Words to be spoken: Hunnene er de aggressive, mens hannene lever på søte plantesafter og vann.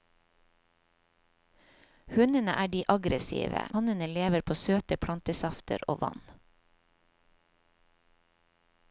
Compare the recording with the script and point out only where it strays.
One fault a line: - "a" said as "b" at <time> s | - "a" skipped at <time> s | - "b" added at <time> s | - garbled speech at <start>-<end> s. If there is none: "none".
- "mens" skipped at 3.7 s